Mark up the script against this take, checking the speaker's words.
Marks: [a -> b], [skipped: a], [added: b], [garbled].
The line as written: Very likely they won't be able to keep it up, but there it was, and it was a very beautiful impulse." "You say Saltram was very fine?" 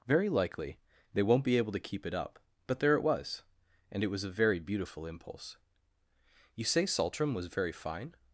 Very likely they won't be able to keep it up, but there it was, and it was a very beautiful impulse." "You say Saltram was very fine?"